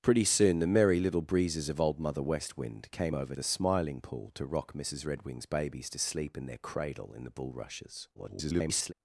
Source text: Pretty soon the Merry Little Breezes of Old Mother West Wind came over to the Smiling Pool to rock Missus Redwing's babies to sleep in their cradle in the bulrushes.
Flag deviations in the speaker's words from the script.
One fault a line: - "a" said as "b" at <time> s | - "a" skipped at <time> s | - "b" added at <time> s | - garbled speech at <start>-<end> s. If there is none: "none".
- "to" skipped at 3.3 s
- garbled speech at 8.1-8.9 s